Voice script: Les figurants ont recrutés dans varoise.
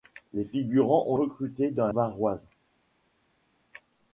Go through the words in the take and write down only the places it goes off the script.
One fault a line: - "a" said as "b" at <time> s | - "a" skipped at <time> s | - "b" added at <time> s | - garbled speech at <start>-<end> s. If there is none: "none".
none